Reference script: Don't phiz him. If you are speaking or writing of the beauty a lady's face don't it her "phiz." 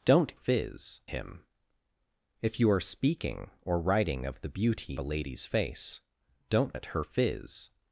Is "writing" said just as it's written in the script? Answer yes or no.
yes